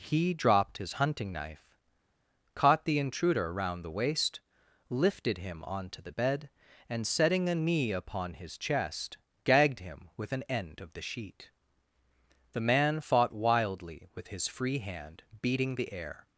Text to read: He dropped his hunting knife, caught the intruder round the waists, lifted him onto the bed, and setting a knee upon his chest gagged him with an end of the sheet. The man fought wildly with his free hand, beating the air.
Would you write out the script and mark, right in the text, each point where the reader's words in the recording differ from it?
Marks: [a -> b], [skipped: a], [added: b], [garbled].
He dropped his hunting knife, caught the intruder round the [waists, -> waist] lifted him onto the bed, and setting a knee upon his chest gagged him with an end of the sheet. The man fought wildly with his free hand, beating the air.